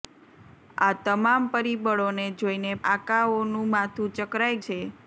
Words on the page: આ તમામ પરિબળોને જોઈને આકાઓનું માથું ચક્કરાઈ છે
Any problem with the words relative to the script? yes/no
no